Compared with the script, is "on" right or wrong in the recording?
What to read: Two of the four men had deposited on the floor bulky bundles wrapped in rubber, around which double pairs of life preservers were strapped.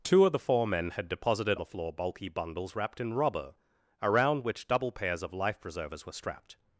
wrong